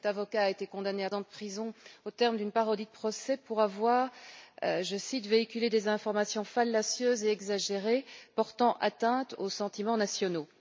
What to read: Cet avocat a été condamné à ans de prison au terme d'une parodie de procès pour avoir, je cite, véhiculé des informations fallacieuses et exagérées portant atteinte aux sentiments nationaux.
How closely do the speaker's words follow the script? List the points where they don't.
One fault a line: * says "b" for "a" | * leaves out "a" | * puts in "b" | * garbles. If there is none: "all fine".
all fine